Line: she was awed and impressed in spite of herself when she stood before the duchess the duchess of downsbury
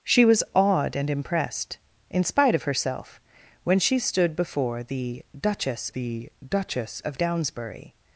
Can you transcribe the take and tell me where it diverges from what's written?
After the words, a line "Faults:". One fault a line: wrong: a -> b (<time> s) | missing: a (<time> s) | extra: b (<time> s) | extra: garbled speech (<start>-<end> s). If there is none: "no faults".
she was awed and impressed in spite of herself when she stood before the duchess the duchess of downsbury
Faults:
no faults